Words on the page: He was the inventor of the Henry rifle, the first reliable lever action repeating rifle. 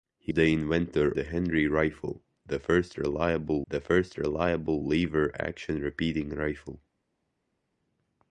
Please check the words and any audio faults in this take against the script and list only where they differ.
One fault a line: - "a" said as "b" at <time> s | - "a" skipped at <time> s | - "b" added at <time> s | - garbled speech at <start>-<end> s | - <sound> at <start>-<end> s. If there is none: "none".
- "was" skipped at 0.3 s
- "of" skipped at 1.1 s
- "the first reliable" added at 3.7 s